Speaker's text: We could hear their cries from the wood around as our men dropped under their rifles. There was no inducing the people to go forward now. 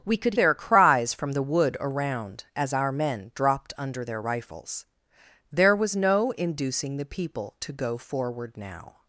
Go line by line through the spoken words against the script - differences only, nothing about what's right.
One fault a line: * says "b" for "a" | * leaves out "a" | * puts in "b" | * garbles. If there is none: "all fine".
* leaves out "hear"